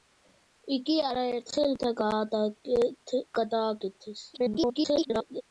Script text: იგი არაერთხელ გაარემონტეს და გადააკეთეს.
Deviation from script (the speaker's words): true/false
true